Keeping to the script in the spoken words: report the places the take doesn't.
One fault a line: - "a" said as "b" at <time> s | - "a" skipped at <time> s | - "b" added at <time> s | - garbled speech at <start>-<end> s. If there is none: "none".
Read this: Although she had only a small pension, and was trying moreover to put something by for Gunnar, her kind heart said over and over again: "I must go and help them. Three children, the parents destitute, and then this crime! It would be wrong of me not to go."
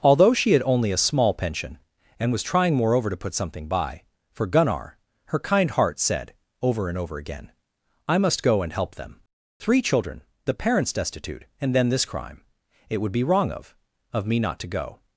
- "of" added at 14.1 s